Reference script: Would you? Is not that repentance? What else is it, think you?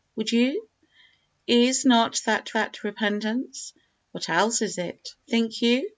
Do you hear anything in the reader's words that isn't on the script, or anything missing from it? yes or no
yes